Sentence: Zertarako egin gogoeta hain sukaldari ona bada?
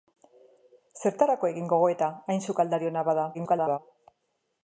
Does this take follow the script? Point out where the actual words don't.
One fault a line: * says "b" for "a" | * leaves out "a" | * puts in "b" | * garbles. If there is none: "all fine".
* garbles